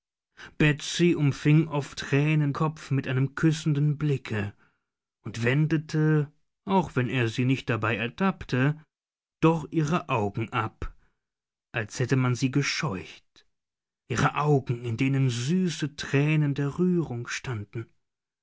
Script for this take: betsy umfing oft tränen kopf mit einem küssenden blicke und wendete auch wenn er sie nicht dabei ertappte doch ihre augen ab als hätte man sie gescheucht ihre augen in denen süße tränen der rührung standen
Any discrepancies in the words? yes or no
no